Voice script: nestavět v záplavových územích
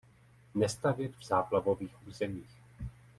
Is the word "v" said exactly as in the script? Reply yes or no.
yes